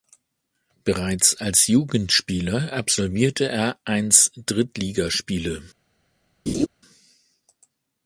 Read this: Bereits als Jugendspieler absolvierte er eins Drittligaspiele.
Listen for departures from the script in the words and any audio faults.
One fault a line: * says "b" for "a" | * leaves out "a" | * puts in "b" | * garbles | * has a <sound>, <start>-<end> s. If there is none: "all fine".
* has a laugh, 6.5-6.7 s